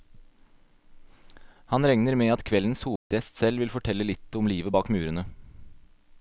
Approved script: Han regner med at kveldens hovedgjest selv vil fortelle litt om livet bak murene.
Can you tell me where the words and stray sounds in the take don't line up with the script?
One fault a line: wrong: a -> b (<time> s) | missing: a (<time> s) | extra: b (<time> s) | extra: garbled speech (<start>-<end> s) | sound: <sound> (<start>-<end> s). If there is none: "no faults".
sound: dropout (3.0-3.1 s)